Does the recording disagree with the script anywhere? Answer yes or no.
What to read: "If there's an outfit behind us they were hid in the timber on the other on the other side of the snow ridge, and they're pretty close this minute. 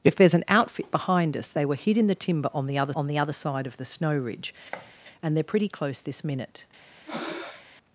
no